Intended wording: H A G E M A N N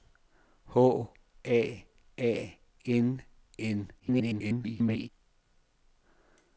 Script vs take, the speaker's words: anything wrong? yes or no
yes